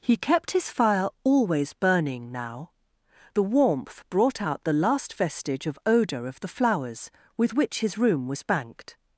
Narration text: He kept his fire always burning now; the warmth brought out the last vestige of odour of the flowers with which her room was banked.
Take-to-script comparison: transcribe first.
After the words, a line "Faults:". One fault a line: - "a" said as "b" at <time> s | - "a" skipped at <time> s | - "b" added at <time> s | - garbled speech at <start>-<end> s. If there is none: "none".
He kept his fire always burning now; the warmth brought out the last vestige of odour of the flowers with which his room was banked.
Faults:
- "her" said as "his" at 7.8 s